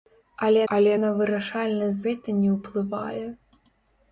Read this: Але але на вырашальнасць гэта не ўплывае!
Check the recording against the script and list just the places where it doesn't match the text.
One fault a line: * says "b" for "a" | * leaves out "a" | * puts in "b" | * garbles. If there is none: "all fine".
all fine